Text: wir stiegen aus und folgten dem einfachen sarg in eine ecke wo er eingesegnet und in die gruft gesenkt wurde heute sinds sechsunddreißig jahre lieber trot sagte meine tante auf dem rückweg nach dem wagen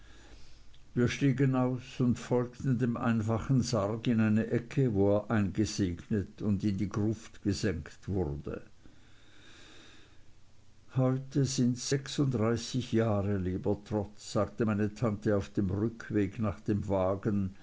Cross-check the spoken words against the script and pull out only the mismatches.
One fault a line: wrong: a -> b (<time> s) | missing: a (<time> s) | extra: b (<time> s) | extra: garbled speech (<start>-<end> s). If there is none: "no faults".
no faults